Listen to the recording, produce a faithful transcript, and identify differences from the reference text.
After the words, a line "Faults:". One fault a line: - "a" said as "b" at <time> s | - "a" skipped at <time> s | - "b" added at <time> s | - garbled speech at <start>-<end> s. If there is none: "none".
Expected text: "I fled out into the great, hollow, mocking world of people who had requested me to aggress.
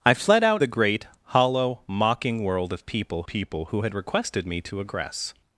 "I fled out the great, hollow, mocking world of people people who had requested me to aggress.
Faults:
- "into" skipped at 0.6 s
- "people" added at 3.3 s